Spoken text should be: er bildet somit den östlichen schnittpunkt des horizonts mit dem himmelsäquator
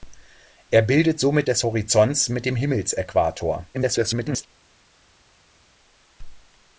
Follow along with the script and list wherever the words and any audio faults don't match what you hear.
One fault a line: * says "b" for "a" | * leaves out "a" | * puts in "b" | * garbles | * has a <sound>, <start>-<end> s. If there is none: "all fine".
* leaves out "den östlichen schnittpunkt"
* garbles